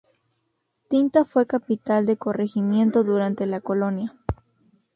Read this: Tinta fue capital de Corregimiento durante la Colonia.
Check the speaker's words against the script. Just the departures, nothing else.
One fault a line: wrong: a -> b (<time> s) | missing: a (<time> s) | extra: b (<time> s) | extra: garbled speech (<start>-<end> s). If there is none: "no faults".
no faults